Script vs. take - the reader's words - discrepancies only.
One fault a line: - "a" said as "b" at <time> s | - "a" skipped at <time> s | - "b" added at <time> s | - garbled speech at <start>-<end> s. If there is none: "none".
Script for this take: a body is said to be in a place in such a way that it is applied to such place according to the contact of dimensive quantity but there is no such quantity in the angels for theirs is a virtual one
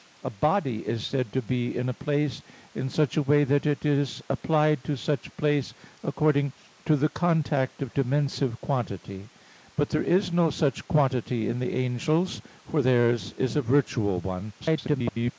- garbled speech at 14.6-15.3 s